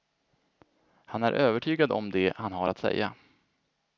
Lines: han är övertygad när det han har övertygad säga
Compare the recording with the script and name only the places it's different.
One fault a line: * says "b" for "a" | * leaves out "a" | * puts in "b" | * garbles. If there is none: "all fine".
* says "om" for "när"
* says "att" for "övertygad"